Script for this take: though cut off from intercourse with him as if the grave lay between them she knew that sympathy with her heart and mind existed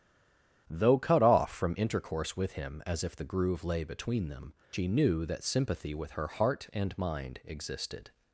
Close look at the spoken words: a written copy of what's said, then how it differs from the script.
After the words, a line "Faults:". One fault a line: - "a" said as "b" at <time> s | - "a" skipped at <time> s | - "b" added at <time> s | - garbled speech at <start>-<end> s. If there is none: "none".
though cut off from intercourse with him as if the groove lay between them she knew that sympathy with her heart and mind existed
Faults:
- "grave" said as "groove" at 3.2 s